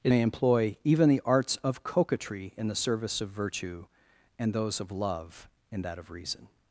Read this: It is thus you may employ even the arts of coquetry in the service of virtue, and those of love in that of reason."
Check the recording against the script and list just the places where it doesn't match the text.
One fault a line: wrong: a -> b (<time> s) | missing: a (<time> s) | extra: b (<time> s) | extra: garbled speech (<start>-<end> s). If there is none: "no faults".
missing: is thus you (0.1 s)